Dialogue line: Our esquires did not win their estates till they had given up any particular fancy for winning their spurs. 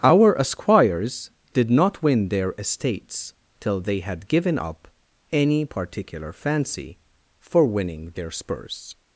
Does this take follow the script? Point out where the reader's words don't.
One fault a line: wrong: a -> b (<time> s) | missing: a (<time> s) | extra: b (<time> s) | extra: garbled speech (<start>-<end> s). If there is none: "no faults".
no faults